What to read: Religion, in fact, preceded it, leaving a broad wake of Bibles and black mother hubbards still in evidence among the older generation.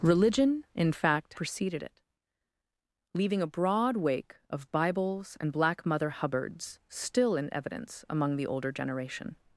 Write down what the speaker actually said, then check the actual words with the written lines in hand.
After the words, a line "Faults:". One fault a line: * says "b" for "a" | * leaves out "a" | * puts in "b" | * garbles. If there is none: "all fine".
Religion, in fact, preceded it, leaving a broad wake of Bibles and black mother hubbards still in evidence among the older generation.
Faults:
all fine